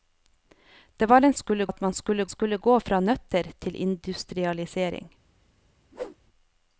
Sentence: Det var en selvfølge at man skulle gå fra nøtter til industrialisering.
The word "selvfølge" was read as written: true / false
false